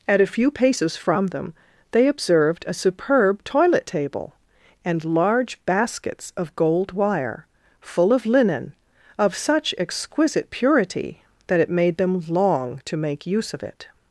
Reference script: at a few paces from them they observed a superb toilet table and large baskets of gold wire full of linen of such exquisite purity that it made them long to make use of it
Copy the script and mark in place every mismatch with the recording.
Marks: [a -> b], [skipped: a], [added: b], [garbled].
at a few paces from them they observed a superb toilet table and large baskets of gold wire full of linen of such exquisite purity that it made them long to make use of it